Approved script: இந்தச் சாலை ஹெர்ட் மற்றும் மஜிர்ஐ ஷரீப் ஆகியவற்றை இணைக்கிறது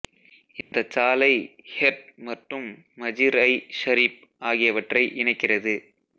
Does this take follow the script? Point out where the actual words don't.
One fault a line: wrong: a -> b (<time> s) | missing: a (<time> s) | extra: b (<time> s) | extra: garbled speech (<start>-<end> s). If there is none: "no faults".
no faults